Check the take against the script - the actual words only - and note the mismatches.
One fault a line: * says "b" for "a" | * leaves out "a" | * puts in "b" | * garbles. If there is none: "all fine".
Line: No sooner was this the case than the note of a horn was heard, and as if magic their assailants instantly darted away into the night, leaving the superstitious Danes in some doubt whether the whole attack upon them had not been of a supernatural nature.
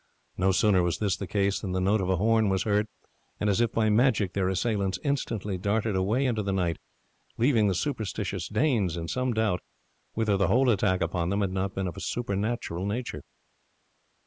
* puts in "by"